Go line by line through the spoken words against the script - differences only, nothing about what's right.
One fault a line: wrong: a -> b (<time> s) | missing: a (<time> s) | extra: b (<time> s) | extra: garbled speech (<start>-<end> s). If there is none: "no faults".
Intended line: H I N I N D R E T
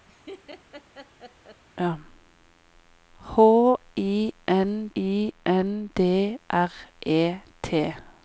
no faults